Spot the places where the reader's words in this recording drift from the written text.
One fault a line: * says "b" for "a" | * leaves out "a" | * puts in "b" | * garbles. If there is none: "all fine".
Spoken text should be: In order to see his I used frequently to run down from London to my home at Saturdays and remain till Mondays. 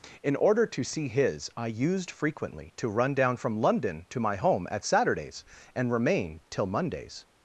all fine